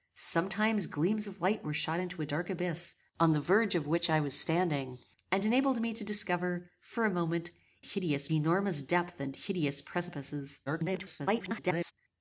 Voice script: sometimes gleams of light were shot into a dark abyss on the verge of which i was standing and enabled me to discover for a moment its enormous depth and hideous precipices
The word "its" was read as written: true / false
false